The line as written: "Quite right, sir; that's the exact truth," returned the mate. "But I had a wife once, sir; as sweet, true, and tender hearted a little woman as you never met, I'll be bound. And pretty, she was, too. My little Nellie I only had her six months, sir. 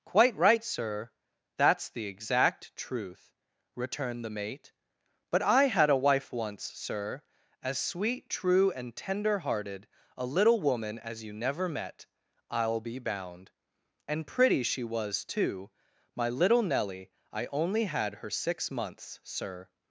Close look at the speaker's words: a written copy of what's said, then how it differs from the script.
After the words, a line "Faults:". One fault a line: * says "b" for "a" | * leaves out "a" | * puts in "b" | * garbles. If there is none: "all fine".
"Quite right, sir; that's the exact truth," returned the mate. "But I had a wife once, sir; as sweet, true, and tender hearted a little woman as you never met, I'll be bound. And pretty, she was, too. My little Nellie I only had her six months, sir.
Faults:
all fine